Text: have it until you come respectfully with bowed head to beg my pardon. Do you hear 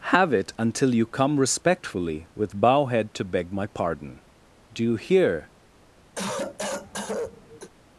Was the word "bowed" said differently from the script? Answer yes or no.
yes